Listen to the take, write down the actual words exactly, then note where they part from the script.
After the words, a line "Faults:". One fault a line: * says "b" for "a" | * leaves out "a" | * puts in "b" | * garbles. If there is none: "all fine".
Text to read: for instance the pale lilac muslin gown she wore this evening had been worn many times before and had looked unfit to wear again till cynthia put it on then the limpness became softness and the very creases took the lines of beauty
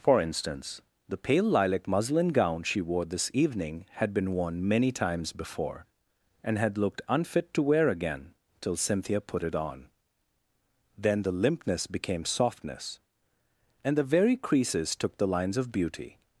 for instance the pale lilac muslin gown she wore this evening had been worn many times before and had looked unfit to wear again till cynthia put it on then the limpness became softness and the very creases took the lines of beauty
Faults:
all fine